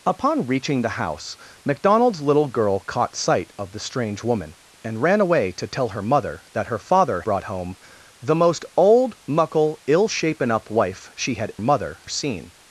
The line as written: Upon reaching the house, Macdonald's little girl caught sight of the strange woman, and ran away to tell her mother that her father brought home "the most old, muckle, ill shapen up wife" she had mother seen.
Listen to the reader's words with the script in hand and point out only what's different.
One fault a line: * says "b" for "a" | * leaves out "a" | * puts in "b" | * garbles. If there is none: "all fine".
all fine